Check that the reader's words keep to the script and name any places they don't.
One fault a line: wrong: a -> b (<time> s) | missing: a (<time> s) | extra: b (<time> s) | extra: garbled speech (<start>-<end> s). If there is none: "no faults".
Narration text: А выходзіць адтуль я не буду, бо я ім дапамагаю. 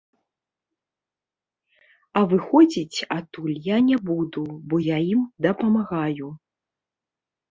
no faults